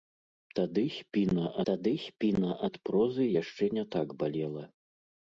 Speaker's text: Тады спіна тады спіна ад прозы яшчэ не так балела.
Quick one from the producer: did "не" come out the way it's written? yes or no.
yes